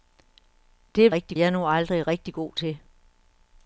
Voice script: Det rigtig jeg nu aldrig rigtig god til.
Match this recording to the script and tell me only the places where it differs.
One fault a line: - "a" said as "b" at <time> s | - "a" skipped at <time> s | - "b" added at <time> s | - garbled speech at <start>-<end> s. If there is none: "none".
none